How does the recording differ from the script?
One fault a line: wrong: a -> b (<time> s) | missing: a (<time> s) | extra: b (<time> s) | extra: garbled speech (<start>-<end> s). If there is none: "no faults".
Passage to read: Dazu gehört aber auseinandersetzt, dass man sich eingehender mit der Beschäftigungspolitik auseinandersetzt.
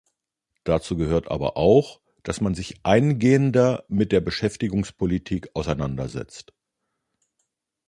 wrong: auseinandersetzt -> auch (1.6 s)